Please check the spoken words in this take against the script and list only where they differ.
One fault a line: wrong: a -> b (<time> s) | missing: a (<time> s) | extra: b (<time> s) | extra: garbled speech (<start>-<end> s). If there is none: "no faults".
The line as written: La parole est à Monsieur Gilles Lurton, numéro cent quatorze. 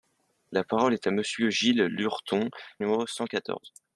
no faults